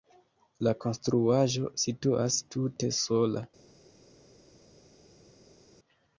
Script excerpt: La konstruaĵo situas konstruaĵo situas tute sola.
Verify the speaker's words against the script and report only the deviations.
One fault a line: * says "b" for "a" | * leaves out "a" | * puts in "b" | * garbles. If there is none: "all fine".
* leaves out "konstruaĵo situas"